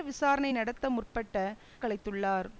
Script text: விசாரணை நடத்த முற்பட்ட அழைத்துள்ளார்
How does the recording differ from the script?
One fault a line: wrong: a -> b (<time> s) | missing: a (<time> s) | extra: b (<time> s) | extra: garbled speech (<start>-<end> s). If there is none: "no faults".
no faults